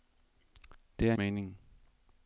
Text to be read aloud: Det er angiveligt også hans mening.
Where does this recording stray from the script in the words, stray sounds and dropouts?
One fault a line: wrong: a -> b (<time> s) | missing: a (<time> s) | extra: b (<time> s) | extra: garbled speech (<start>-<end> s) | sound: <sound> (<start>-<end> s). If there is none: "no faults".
missing: angiveligt også hans (1.1 s)